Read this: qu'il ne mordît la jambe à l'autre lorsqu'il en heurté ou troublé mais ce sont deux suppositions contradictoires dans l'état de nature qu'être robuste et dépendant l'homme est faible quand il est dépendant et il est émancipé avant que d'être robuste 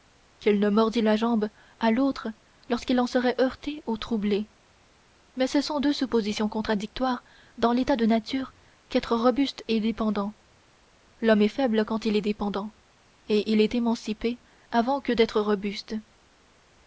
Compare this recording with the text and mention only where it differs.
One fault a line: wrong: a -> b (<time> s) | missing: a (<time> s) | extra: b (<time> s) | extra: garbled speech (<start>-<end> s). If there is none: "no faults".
extra: serait (3.0 s)